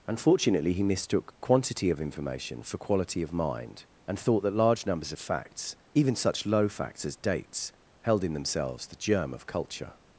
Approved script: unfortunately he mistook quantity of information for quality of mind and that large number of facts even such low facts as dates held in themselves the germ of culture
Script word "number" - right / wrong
wrong